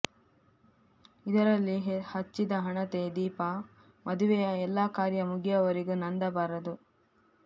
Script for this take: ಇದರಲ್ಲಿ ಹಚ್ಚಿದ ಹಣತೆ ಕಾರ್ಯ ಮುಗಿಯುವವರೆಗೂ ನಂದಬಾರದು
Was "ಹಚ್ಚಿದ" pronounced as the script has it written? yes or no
yes